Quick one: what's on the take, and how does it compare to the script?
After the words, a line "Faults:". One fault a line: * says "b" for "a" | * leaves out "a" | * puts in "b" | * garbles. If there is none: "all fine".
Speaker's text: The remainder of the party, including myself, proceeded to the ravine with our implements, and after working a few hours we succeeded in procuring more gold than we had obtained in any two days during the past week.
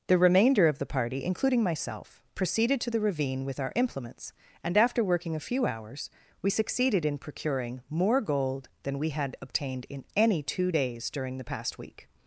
The remainder of the party, including myself, proceeded to the ravine with our implements, and after working a few hours we succeeded in procuring more gold than we had obtained in any two days during the past week.
Faults:
all fine